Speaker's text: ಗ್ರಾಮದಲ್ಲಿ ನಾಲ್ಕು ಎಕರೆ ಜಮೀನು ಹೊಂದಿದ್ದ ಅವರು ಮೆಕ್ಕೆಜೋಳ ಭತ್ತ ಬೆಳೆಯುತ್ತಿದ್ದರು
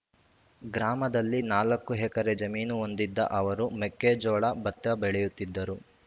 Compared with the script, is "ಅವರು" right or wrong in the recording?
right